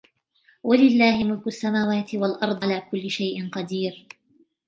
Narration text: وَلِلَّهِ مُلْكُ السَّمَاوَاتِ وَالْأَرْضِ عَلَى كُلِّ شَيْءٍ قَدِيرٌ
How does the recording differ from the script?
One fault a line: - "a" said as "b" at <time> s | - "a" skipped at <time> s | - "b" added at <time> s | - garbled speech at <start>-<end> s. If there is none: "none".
none